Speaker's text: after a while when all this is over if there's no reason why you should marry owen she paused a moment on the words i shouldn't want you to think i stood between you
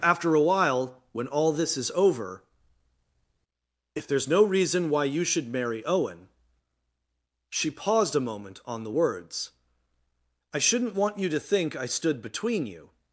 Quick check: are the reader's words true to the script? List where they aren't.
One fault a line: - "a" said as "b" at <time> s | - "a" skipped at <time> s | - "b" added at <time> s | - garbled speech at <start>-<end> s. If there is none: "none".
none